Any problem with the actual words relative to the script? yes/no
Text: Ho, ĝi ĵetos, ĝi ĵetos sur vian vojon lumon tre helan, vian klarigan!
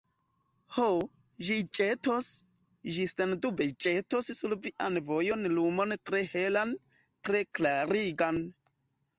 yes